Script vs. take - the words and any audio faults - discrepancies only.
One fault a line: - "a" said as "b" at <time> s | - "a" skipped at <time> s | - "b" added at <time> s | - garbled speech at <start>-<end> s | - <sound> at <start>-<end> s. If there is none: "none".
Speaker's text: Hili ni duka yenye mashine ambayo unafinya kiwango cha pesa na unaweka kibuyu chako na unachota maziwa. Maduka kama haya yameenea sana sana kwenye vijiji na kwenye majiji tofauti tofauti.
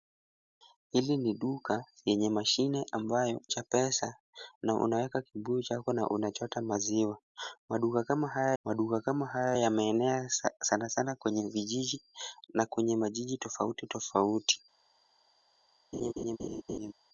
- "unafinya kiwango" skipped at 3.4 s
- "maduka kama haya" added at 8.6 s
- laugh at 15.9-16.9 s